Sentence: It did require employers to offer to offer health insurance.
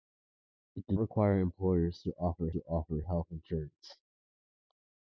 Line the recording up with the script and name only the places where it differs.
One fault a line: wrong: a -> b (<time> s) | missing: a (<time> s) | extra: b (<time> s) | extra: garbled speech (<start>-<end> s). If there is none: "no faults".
no faults